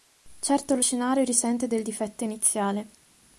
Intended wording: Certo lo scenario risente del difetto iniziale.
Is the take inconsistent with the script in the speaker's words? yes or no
no